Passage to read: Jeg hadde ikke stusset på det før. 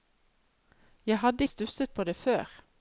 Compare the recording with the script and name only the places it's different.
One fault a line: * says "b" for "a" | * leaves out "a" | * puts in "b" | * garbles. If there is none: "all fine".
* leaves out "ikke"